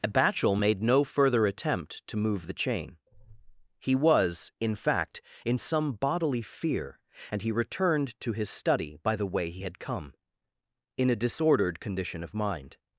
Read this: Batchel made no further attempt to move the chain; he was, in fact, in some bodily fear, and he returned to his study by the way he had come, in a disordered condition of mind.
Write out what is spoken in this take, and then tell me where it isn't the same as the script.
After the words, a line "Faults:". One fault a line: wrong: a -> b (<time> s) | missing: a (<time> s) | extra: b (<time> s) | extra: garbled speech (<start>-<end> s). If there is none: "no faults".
Batchel made no further attempt to move the chain; he was, in fact, in some bodily fear, and he returned to his study by the way he had come, in a disordered condition of mind.
Faults:
no faults